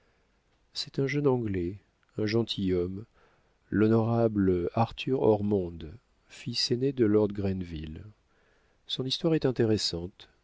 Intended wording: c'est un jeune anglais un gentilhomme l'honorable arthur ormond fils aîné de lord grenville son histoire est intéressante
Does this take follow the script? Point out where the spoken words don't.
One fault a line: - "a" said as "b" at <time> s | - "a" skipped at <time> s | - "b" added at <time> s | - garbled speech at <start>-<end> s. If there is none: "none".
none